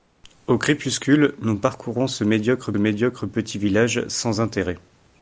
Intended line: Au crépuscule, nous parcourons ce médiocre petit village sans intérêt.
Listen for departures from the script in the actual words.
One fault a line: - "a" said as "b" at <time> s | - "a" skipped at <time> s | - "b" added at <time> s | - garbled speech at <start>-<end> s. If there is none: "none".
- "médiocre" added at 2.8 s